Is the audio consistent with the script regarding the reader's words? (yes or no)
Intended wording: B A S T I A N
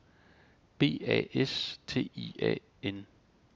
yes